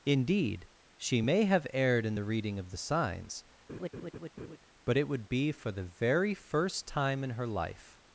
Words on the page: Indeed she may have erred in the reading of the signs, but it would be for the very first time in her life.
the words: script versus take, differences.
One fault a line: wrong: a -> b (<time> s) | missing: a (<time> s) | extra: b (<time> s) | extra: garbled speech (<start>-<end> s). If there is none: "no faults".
no faults